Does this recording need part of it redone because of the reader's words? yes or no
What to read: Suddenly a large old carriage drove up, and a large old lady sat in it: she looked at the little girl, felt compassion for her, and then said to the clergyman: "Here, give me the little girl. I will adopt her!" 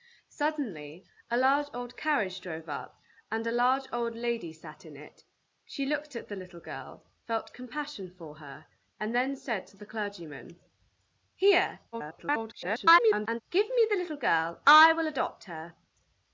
yes